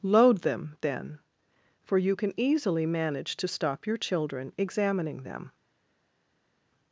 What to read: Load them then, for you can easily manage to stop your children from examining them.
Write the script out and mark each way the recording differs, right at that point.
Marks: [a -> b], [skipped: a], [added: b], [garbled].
Load them then, for you can easily manage to stop your children [skipped: from] examining them.